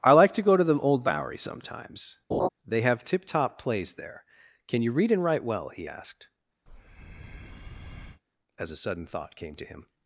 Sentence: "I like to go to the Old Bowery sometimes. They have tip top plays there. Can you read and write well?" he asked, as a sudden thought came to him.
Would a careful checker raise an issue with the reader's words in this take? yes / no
no